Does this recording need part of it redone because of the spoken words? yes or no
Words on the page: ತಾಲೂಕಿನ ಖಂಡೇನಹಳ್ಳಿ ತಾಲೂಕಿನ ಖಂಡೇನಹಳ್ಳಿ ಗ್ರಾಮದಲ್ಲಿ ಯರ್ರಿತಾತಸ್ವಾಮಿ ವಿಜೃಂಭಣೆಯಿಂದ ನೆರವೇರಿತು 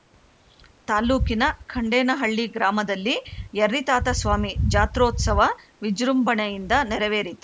yes